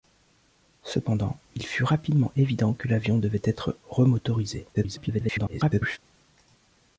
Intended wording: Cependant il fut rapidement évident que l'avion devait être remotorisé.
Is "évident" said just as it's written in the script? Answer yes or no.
yes